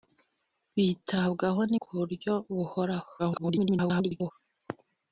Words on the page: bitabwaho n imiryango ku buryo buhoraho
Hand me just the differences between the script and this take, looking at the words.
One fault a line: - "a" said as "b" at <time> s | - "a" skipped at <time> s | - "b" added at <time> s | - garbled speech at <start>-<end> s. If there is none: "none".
- "imiryango" skipped at 1.7 s
- garbled speech at 3.2-4.3 s